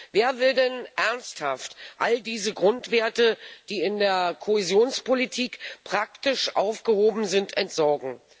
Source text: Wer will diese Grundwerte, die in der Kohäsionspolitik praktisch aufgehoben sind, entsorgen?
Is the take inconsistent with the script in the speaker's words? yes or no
yes